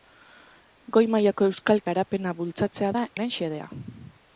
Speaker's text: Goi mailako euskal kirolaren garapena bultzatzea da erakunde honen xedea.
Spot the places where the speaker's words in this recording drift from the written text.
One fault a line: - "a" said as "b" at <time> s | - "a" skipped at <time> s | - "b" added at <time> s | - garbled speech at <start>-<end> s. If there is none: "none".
- "kirolaren" skipped at 1.8 s
- "erakunde" skipped at 3.0 s